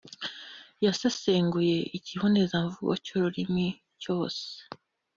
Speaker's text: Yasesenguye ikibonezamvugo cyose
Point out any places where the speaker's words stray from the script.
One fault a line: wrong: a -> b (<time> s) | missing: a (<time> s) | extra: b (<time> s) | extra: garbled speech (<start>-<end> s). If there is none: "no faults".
extra: cy'ururimi (3.0 s)